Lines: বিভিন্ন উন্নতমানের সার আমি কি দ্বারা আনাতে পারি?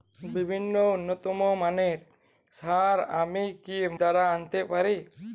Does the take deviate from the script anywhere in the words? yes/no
no